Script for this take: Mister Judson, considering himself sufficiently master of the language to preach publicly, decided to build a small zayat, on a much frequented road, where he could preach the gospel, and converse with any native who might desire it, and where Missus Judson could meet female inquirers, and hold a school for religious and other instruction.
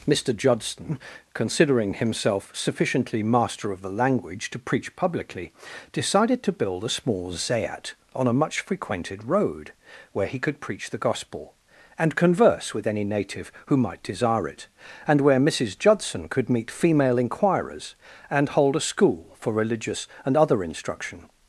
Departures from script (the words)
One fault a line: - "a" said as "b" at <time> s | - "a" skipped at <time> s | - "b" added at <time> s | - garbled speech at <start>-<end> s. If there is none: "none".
none